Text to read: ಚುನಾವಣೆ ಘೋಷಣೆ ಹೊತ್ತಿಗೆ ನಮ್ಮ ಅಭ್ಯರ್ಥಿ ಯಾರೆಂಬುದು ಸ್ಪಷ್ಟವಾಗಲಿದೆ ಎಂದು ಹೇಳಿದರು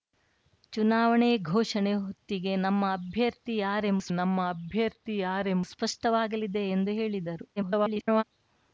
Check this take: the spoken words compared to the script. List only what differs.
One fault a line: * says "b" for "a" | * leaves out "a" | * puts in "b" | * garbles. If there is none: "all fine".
* puts in "ನಮ್ಮ ಅಭ್ಯರ್ಥಿ ಯಾರೆಂಬುದು"
* garbles